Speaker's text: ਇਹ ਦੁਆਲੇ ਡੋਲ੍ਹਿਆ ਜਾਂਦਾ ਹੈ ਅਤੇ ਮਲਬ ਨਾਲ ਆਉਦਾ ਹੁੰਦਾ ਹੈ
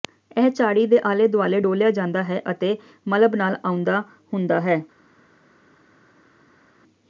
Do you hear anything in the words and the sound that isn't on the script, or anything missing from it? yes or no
yes